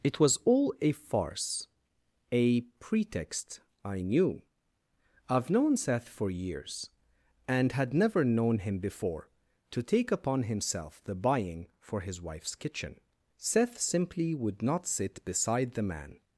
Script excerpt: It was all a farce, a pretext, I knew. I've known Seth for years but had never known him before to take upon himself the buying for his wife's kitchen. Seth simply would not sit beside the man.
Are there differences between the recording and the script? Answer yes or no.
yes